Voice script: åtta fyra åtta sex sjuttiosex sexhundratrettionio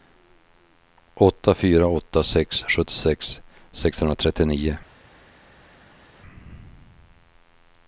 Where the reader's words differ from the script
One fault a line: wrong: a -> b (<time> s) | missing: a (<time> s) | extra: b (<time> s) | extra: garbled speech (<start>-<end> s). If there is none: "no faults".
no faults